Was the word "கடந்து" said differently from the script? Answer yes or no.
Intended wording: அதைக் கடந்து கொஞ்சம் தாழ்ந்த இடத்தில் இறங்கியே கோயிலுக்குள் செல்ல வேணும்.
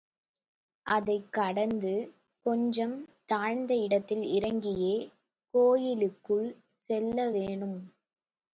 no